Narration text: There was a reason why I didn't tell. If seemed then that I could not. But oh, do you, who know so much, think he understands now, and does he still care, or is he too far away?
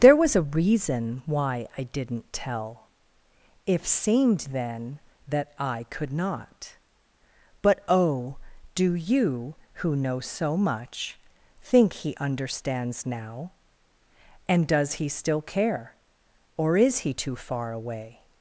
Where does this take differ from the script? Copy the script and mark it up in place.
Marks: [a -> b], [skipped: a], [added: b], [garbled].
There was a reason why I didn't tell. If seemed then that I could not. But oh, do you, who know so much, think he understands now, and does he still care, or is he too far away?